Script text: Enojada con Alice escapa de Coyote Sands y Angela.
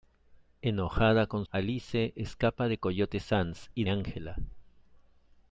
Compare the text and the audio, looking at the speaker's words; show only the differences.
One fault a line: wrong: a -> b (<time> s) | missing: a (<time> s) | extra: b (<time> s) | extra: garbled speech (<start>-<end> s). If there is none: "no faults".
no faults